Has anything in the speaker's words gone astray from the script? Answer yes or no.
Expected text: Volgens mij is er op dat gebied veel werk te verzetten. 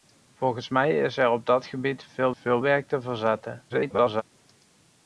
yes